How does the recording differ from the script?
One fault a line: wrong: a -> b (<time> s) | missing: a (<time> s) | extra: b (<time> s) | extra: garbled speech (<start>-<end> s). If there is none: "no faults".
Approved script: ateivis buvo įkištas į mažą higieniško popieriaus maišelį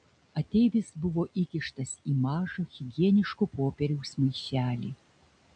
no faults